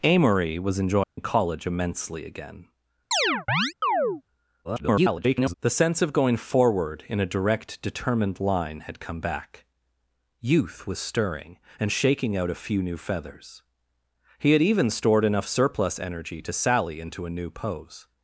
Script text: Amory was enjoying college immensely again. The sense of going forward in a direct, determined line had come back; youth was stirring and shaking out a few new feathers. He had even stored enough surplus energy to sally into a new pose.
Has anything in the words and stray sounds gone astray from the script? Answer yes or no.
yes